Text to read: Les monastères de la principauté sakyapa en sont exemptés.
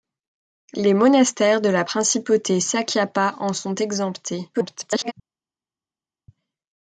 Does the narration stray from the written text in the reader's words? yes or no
yes